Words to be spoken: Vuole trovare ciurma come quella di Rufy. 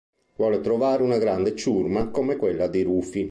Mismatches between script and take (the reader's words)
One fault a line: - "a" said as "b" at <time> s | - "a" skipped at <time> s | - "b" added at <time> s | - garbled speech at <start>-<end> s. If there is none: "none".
- "una grande" added at 1.0 s